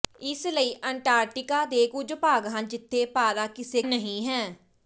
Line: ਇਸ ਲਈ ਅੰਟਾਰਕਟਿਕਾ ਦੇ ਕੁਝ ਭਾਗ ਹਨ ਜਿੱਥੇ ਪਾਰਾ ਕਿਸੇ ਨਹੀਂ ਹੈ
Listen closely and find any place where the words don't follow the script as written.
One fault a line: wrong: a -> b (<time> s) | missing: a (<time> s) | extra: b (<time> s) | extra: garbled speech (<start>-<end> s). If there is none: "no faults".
no faults